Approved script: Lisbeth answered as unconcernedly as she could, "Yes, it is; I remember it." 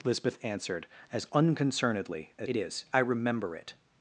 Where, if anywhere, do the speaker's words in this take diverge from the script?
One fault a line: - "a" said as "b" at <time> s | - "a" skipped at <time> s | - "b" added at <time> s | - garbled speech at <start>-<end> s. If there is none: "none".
- "she could Yes" skipped at 2.5 s